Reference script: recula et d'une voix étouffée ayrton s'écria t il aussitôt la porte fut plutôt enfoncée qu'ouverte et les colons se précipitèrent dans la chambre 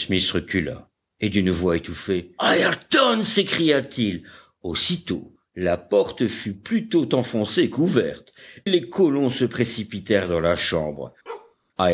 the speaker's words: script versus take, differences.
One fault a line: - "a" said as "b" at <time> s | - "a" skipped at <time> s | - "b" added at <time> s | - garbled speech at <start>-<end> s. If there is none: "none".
- "et" skipped at 8.3 s